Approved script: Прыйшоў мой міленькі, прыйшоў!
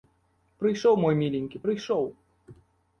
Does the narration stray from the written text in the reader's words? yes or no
no